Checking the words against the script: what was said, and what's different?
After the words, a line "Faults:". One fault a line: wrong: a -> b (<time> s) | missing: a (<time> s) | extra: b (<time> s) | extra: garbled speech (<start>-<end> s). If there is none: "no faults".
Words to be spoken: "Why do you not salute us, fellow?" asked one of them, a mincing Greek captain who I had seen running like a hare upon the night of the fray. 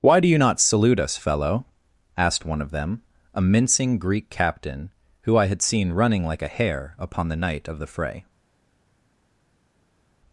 "Why do you not salute us, fellow?" asked one of them, a mincing Greek captain who I had seen running like a hare upon the night of the fray.
Faults:
no faults